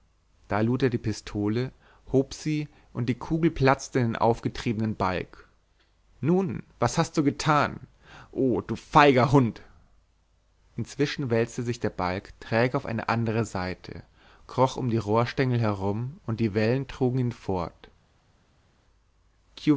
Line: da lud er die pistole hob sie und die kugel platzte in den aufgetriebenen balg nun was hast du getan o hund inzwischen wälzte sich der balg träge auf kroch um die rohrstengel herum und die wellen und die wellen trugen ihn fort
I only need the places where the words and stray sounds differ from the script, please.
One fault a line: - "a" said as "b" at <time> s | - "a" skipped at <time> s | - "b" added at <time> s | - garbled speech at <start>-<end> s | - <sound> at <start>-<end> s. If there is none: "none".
- "du feiger" added at 8.6 s
- "eine andere seite" added at 12.9 s
- "und die wellen" skipped at 16.9 s